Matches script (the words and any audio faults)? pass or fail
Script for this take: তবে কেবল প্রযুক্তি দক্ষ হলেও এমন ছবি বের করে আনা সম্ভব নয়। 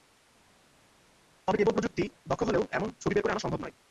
pass